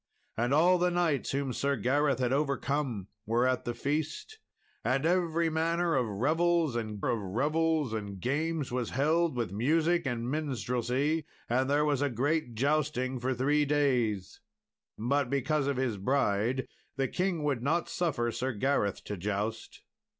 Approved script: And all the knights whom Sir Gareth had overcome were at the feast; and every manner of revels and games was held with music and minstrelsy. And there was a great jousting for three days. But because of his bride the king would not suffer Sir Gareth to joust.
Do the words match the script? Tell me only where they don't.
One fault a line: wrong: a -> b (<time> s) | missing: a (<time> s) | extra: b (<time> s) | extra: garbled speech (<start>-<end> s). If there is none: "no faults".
extra: of revels and (7.1 s)